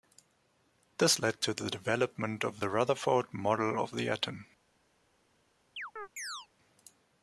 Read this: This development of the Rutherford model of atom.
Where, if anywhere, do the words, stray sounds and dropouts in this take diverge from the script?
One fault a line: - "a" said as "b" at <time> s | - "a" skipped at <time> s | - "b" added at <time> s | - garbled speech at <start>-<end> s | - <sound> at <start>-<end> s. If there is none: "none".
- "led to the" added at 1.2 s
- "the" added at 3.9 s
- chirp at 5.8-6.5 s